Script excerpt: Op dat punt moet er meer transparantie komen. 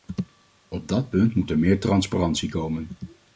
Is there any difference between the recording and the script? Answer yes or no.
no